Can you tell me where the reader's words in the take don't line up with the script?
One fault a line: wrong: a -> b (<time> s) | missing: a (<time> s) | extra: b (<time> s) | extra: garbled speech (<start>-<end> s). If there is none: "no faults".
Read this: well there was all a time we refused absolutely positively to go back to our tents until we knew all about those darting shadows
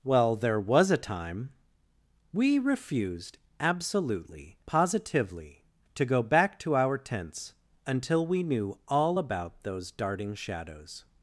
missing: all (0.9 s)